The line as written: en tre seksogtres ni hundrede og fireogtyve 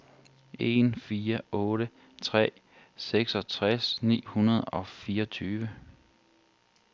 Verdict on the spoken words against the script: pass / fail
fail